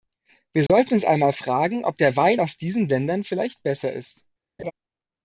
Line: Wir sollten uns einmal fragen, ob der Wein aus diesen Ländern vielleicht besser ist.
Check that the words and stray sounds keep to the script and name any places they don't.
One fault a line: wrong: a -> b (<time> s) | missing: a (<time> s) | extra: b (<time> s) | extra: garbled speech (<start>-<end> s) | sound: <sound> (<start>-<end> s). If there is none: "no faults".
sound: dropout (0.7-0.7 s)
sound: laugh (4.6-4.7 s)